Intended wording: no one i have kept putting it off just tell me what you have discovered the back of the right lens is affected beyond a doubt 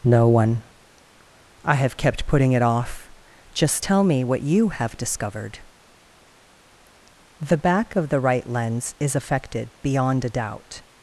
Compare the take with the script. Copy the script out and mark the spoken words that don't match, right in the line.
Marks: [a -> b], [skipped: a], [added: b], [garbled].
no one i have kept putting it off just tell me what you have discovered the back of the right lens is affected beyond a doubt